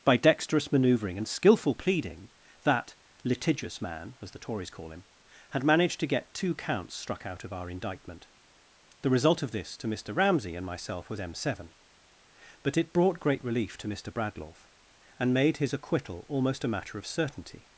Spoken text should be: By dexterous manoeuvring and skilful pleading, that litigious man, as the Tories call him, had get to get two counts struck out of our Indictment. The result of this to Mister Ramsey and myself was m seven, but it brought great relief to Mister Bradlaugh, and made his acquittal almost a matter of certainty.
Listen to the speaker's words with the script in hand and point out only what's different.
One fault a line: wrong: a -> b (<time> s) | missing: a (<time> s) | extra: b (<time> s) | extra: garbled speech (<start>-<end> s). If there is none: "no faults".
wrong: get -> managed (5.6 s)